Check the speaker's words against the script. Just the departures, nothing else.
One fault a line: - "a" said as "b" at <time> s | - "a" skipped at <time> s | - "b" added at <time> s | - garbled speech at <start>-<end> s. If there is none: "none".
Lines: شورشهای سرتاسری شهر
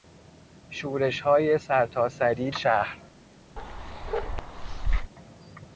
none